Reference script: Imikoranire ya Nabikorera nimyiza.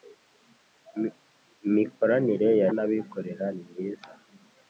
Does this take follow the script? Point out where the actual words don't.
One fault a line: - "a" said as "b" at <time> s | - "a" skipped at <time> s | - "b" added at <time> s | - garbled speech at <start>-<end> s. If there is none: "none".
none